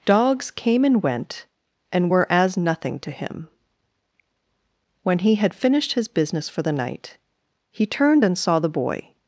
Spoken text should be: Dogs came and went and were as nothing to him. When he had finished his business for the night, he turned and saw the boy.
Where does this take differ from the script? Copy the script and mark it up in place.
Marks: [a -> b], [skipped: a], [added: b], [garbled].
Dogs came and went and were as nothing to him. When he had finished his business for the night, he turned and saw the boy.